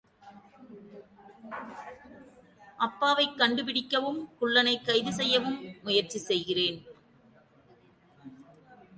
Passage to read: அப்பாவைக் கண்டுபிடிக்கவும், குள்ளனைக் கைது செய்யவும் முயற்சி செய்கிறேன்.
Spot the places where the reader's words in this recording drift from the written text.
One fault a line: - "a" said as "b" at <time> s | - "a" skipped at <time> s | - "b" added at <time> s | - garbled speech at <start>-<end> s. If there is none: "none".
none